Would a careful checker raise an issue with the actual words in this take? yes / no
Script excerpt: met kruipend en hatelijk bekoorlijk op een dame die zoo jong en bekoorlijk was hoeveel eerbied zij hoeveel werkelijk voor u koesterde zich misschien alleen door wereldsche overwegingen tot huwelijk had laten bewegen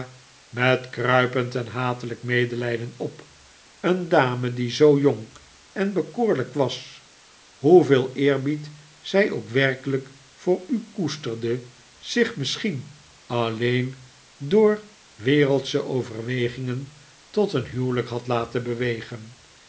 yes